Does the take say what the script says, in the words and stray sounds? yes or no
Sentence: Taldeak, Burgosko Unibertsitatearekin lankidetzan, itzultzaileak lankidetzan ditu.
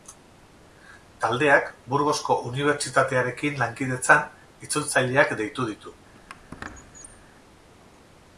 no